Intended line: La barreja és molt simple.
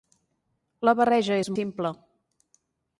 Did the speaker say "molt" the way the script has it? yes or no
no